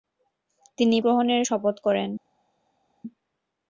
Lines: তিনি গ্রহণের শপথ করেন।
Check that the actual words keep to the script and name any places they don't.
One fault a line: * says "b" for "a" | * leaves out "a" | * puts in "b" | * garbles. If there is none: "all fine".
all fine